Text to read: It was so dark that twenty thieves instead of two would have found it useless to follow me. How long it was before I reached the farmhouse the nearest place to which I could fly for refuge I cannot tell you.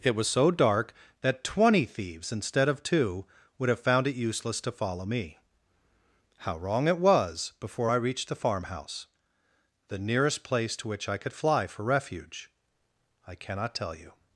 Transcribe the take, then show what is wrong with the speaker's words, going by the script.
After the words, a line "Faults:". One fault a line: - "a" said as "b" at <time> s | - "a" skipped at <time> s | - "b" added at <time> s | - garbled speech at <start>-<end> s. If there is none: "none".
It was so dark that twenty thieves instead of two would have found it useless to follow me. How wrong it was before I reached the farmhouse the nearest place to which I could fly for refuge I cannot tell you.
Faults:
- "long" said as "wrong" at 6.6 s